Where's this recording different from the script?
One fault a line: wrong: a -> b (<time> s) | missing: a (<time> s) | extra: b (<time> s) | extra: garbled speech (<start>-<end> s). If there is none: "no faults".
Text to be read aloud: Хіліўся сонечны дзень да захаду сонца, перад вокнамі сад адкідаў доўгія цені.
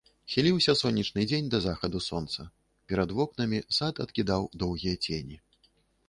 no faults